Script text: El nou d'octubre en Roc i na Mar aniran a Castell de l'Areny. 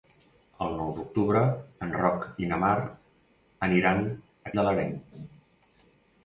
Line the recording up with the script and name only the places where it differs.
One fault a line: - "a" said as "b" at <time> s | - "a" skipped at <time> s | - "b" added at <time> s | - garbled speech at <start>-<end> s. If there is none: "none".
- "Castell" skipped at 4.6 s